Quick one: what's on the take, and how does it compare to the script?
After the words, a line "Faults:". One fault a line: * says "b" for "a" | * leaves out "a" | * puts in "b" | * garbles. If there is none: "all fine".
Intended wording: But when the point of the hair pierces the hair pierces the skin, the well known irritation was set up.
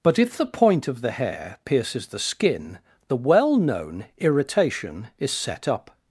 But if the point of the hair pierces the skin, the well known irritation is set up.
Faults:
* says "if" for "when"
* leaves out "hair pierces the"
* says "is" for "was"